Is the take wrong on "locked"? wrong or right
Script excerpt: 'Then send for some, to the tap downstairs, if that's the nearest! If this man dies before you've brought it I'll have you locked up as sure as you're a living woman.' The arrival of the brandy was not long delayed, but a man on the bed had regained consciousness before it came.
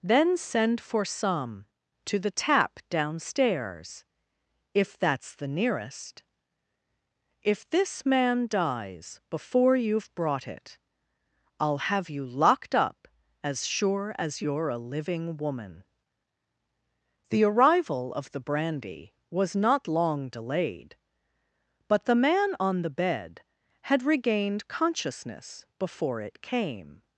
right